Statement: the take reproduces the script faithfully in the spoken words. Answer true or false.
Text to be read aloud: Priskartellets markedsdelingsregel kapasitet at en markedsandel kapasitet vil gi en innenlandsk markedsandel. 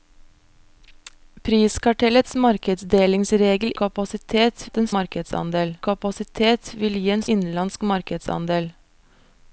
true